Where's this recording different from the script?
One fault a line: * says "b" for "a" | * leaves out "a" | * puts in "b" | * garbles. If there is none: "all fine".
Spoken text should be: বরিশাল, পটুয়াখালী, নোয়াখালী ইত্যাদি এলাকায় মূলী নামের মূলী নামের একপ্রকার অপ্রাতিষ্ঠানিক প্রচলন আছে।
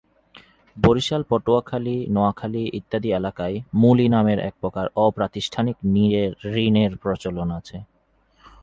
* leaves out "মূলী নামের"
* puts in "ঋণের"